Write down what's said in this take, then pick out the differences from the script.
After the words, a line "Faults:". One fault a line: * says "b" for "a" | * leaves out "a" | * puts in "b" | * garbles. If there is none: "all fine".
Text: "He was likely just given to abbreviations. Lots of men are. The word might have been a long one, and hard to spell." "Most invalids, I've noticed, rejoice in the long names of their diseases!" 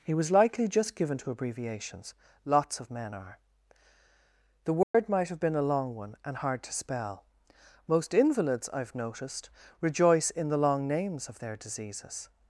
"He was likely just given to abbreviations. Lots of men are. The word might have been a long one, and hard to spell." "Most invalids, I've noticed, rejoice in the long names of their diseases!"
Faults:
all fine